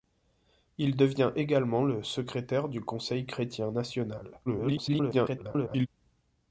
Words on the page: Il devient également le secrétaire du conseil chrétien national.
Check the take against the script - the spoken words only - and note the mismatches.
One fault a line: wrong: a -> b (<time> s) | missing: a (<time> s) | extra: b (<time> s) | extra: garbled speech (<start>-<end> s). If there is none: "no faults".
extra: garbled speech (4.5-5.9 s)